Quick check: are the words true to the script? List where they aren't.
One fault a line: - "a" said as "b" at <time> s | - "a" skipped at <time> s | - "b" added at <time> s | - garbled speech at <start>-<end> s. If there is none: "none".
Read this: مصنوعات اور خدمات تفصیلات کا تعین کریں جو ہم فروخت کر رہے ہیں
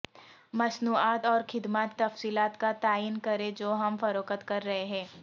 none